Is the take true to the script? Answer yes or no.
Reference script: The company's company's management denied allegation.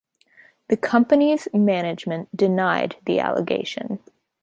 no